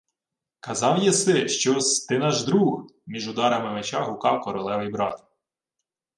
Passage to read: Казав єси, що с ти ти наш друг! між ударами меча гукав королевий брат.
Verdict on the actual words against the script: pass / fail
fail